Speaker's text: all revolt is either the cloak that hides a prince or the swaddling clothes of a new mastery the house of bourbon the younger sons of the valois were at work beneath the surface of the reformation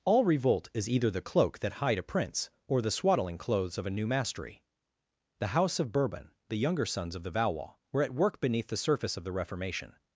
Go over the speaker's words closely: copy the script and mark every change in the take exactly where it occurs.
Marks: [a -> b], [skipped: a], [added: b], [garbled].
all revolt is either the cloak that [hides -> hide] a prince or the swaddling clothes of a new mastery the house of bourbon the younger sons of the valois were at work beneath the surface of the reformation